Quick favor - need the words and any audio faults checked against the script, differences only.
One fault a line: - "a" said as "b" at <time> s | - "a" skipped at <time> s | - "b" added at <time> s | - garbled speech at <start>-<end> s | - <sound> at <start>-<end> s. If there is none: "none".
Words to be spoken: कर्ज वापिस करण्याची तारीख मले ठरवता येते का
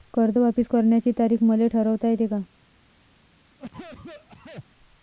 - cough at 3.6-4.6 s